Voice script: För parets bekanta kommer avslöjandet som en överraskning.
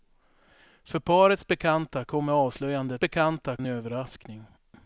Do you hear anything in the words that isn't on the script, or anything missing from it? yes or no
yes